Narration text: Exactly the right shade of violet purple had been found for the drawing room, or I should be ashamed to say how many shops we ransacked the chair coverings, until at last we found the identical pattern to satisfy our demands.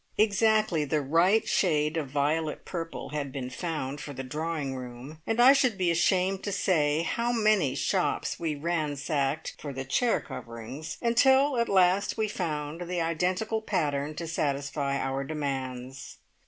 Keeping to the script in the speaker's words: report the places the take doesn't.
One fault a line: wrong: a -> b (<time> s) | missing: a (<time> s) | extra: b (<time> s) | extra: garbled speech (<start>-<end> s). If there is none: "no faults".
wrong: or -> and (5.3 s)
extra: for (9.6 s)